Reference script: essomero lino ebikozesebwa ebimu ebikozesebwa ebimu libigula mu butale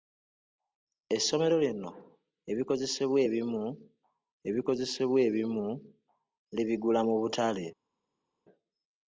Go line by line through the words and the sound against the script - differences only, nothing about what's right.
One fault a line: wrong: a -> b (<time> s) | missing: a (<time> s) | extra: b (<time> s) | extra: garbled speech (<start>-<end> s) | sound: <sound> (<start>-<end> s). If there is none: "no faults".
no faults